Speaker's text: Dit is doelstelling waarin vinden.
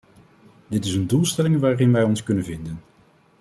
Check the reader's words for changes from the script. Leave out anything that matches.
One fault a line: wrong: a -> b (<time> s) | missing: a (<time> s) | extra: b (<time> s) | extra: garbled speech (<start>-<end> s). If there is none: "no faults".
extra: een (0.9 s)
extra: wij ons kunnen (1.9 s)